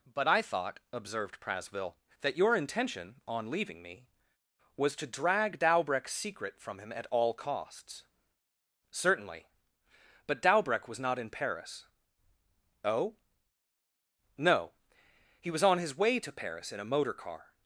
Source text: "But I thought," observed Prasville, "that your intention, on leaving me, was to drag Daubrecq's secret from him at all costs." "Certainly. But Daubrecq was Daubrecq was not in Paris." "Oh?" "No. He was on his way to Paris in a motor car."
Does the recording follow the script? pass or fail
fail